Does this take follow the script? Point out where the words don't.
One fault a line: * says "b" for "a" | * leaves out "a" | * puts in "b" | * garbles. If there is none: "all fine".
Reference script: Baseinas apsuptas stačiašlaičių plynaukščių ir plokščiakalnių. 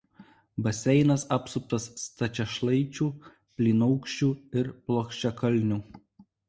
all fine